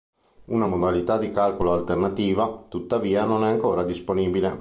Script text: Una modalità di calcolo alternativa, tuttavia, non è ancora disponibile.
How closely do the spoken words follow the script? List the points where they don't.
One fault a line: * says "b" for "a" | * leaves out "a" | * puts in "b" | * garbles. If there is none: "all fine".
all fine